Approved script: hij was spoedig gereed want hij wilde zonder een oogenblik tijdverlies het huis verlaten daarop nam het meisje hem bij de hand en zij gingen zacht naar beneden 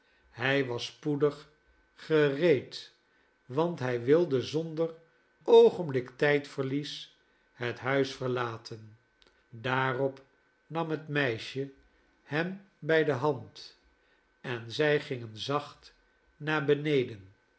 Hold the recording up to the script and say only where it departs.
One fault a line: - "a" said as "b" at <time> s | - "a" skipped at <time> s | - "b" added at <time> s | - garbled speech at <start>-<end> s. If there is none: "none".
- "een" skipped at 4.9 s